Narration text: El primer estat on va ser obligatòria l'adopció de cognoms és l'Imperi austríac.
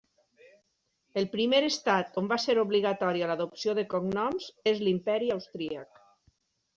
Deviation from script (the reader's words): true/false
false